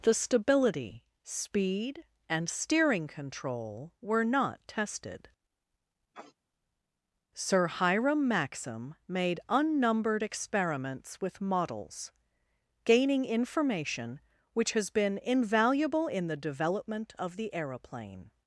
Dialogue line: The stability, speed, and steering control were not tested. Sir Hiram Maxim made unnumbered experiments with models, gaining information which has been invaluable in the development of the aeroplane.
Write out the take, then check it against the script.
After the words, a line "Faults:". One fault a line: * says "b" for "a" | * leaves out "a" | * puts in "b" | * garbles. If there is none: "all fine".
The stability, speed, and steering control were not tested. Sir Hiram Maxim made unnumbered experiments with models, gaining information which has been invaluable in the development of the aeroplane.
Faults:
all fine